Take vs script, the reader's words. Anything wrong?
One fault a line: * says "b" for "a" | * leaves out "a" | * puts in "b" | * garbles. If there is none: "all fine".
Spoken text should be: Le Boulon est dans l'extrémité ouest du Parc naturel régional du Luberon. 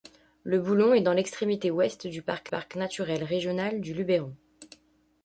* puts in "Parc"